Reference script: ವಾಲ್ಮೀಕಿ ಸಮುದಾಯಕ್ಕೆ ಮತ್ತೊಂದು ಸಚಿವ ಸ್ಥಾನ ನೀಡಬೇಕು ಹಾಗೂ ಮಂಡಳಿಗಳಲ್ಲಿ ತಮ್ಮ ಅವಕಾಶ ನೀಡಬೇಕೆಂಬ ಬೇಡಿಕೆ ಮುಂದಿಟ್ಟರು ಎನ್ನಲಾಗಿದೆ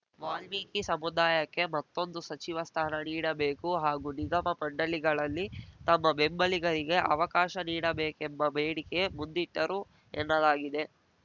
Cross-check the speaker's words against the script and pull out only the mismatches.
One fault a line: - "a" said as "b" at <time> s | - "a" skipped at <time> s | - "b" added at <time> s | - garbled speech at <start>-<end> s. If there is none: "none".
- "ನಿಗಮ" added at 4.2 s
- "ಬೆಂಬಲಿಗರಿಗೆ" added at 6.2 s